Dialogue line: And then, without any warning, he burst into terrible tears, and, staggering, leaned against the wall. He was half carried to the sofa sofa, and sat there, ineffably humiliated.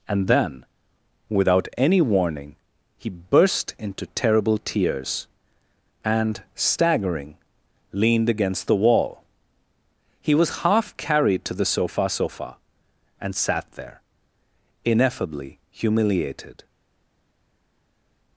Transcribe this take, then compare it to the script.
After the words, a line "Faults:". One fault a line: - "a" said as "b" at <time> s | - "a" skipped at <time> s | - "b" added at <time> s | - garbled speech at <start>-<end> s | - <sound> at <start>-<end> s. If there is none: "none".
And then, without any warning, he burst into terrible tears, and, staggering, leaned against the wall. He was half carried to the sofa sofa, and sat there, ineffably humiliated.
Faults:
none